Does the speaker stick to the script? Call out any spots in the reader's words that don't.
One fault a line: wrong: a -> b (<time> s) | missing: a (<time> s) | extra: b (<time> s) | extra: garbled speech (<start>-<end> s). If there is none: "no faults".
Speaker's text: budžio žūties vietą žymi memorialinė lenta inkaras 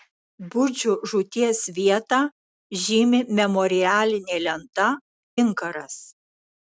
no faults